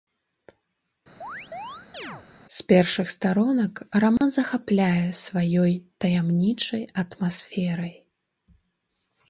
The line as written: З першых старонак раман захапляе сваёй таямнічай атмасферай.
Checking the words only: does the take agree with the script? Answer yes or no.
yes